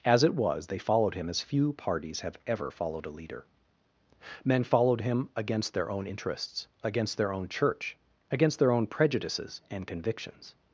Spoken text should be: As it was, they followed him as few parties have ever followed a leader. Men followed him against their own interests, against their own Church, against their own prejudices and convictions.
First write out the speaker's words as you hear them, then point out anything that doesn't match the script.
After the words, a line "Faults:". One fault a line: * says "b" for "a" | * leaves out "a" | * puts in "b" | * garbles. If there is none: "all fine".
As it was, they followed him as few parties have ever followed a leader. Men followed him against their own interests, against their own Church, against their own prejudices and convictions.
Faults:
all fine